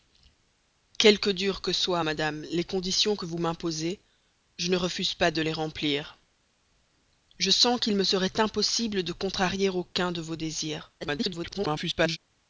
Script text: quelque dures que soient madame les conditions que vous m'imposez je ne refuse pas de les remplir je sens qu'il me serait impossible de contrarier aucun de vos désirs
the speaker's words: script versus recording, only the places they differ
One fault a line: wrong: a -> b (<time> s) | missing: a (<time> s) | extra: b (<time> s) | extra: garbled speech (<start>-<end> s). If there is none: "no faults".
extra: garbled speech (11.0-12.2 s)